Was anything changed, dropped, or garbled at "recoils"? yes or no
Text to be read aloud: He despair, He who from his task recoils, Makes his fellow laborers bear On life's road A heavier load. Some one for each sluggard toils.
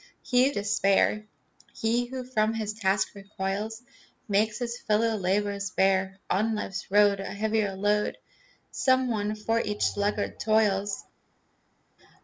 no